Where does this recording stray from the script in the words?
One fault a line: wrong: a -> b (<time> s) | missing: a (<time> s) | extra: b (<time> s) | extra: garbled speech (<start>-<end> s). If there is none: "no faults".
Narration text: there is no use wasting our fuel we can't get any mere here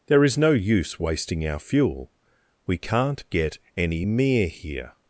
no faults